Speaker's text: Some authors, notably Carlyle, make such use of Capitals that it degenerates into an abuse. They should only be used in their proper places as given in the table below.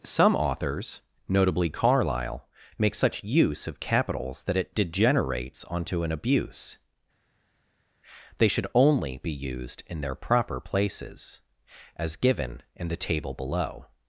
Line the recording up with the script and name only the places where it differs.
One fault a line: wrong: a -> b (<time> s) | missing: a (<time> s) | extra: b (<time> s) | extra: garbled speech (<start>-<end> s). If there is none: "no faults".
wrong: into -> onto (5.7 s)